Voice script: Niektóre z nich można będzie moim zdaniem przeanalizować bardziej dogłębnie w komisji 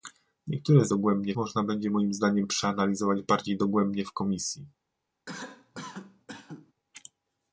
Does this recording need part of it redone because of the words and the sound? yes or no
yes